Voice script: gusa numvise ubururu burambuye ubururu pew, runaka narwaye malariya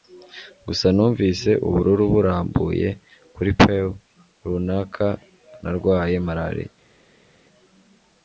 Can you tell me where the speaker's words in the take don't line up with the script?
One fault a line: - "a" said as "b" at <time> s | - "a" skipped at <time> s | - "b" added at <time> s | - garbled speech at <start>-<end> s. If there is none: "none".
- "ubururu" said as "kuri" at 3.4 s